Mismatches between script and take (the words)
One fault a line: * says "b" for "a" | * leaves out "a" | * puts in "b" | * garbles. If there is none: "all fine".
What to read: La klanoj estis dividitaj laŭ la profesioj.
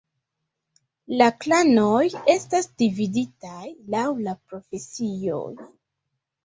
* says "estas" for "estis"